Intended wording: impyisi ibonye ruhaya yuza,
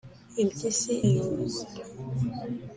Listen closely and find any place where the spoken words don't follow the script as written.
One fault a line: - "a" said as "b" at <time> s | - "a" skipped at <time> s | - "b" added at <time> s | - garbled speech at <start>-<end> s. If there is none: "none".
- "ibonye ruhaya" skipped at 0.9 s